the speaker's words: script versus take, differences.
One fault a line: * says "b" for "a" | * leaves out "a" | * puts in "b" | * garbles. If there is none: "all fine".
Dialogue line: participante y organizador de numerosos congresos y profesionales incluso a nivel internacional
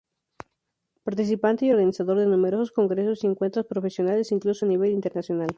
* puts in "encuentros"